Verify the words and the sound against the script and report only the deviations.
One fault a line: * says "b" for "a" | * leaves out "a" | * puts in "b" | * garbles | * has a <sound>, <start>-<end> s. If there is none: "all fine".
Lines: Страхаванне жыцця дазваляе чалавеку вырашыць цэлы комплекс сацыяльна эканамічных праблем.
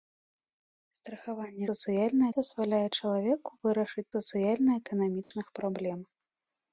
* says "сацыяльна" for "жыцця"
* leaves out "цэлы комплекс"
* has a dropout, 5.2-5.3 s